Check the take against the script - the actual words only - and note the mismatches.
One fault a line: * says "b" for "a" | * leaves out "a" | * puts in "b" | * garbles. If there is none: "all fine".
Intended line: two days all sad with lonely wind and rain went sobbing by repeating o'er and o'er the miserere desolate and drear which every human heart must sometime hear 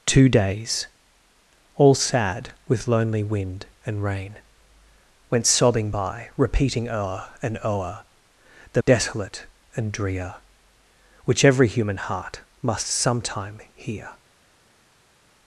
* leaves out "miserere"